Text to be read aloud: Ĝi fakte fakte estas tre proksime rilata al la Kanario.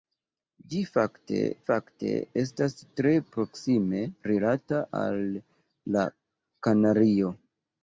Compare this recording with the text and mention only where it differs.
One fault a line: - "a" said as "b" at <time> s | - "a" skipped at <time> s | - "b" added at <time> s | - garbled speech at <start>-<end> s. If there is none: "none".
none